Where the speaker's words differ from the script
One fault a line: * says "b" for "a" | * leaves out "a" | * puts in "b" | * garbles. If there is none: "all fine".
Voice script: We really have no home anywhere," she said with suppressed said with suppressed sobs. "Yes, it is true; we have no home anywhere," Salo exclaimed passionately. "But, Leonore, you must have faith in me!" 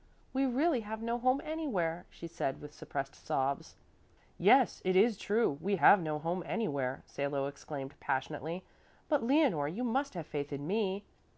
* leaves out "said with suppressed"